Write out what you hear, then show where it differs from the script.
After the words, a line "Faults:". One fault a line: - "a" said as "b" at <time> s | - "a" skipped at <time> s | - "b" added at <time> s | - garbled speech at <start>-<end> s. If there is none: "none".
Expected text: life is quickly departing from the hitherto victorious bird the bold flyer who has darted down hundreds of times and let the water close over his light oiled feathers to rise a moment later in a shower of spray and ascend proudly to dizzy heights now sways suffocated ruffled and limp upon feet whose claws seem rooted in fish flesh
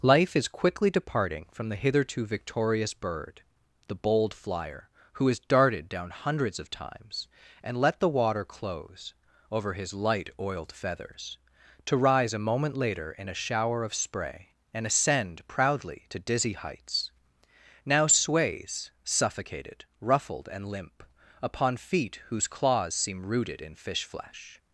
life is quickly departing from the hitherto victorious bird the bold flyer who has darted down hundreds of times and let the water close over his light oiled feathers to rise a moment later in a shower of spray and ascend proudly to dizzy heights now sways suffocated ruffled and limp upon feet whose claws seem rooted in fish flesh
Faults:
none